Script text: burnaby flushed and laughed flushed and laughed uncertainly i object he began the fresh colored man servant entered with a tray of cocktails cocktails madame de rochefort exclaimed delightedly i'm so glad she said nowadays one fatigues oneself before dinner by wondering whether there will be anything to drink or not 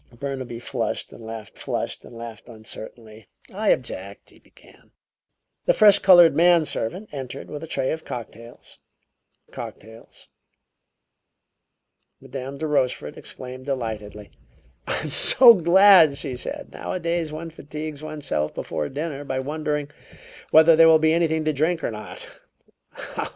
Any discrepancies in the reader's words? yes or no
no